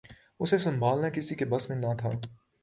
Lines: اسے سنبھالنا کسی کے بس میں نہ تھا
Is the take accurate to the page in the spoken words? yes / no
yes